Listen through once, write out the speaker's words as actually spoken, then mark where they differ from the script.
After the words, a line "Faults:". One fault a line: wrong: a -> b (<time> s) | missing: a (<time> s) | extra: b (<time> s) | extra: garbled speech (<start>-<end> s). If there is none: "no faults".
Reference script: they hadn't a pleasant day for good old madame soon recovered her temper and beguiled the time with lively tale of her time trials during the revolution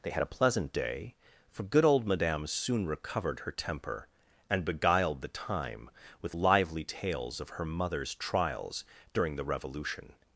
they had a pleasant day for good old madame soon recovered her temper and beguiled the time with lively tales of her mother's trials during the revolution
Faults:
wrong: hadn't -> had (0.1 s)
wrong: tale -> tales (6.8 s)
wrong: time -> mother's (7.6 s)